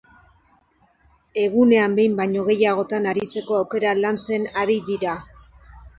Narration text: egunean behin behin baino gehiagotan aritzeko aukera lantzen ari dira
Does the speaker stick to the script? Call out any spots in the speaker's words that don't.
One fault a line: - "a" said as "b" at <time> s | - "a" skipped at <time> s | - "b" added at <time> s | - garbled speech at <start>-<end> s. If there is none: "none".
- "behin" skipped at 2.1 s